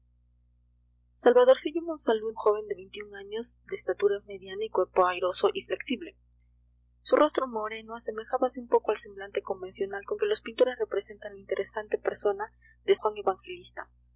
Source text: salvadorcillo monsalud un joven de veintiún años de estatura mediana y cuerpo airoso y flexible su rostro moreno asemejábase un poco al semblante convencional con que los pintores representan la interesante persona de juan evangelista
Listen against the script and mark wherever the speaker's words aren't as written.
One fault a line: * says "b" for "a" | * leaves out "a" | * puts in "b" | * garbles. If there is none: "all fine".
all fine